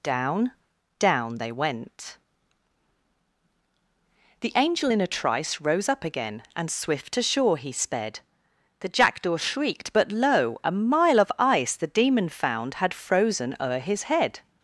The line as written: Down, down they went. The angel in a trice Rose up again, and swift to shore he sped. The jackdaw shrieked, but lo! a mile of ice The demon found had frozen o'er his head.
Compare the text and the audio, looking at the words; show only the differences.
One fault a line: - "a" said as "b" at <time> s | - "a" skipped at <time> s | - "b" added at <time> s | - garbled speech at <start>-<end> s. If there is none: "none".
none